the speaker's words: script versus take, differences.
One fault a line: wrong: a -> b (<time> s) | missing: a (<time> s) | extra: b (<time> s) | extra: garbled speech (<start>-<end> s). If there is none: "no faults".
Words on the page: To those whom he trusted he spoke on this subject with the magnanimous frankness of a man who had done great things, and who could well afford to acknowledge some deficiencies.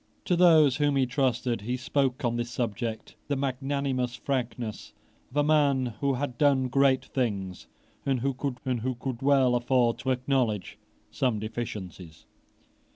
missing: with (3.1 s)
extra: and who could (8.7 s)